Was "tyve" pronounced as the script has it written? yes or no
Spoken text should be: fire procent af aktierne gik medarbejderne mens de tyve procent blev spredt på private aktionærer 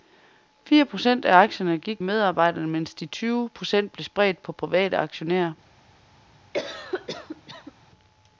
yes